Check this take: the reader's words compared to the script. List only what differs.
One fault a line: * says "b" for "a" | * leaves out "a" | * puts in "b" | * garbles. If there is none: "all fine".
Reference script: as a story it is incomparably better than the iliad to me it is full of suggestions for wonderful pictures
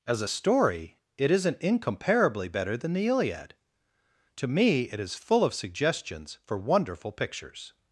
* says "isn't" for "is"